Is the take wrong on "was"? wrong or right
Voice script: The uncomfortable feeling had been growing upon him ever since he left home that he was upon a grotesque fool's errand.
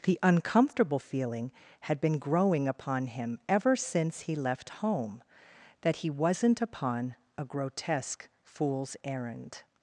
wrong